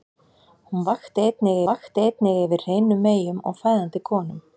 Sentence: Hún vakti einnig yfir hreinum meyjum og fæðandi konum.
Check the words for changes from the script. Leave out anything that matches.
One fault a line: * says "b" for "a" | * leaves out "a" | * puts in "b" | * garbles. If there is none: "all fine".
* puts in "vakti einnig"